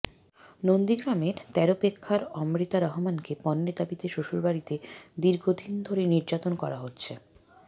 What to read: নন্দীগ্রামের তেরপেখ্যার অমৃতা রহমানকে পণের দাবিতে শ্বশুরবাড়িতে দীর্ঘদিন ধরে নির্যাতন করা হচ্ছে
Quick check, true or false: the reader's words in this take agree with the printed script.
true